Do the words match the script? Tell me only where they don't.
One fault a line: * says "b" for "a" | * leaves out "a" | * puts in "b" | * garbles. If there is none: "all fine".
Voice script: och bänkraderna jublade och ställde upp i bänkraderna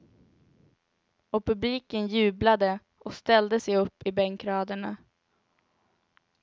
* says "publiken" for "bänkraderna"
* puts in "sig"